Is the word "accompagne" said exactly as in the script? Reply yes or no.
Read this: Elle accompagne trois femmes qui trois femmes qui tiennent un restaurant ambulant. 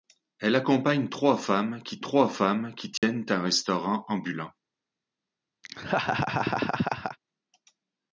yes